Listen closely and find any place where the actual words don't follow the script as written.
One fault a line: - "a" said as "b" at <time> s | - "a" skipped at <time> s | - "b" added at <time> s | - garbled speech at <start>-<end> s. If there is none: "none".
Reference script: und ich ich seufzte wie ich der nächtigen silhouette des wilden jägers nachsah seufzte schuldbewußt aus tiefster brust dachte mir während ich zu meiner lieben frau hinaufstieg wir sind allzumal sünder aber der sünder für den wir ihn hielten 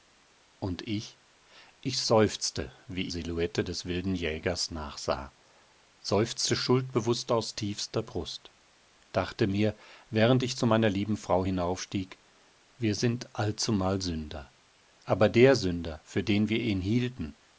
- "ich der nächtigen" skipped at 3.1 s